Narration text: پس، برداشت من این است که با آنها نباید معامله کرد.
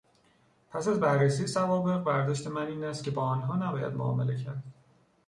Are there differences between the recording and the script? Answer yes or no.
yes